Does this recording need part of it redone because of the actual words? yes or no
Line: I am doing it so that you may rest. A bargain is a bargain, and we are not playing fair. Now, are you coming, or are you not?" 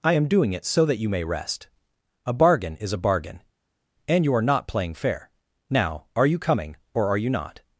yes